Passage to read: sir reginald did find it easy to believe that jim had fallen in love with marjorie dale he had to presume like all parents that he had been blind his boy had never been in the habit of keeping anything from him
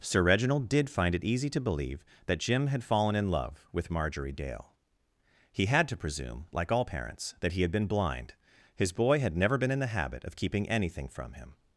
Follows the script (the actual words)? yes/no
yes